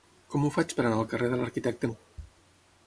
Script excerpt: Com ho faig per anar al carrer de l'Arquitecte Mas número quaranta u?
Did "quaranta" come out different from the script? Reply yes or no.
yes